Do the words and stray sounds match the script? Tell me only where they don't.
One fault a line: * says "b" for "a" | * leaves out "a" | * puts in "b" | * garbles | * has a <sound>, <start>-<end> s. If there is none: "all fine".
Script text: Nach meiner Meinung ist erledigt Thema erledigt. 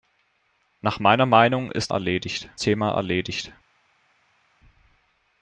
all fine